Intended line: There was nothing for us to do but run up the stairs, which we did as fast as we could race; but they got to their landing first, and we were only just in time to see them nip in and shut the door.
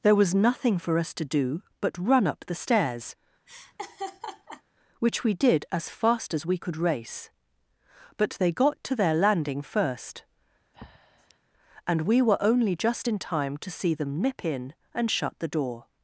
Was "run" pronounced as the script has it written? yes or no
yes